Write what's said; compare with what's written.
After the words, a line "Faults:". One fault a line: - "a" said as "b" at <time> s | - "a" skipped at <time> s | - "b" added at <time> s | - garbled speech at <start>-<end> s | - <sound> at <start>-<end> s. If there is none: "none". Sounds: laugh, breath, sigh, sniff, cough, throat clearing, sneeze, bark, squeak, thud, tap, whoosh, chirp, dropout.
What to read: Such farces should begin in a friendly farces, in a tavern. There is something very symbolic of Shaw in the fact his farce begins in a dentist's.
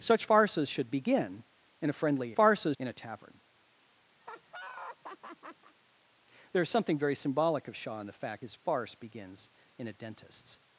Such farces should begin in a friendly farces, in a tavern. There is something very symbolic of Shaw in the fact his farce begins in a dentist's.
Faults:
- laugh at 4.2-5.7 s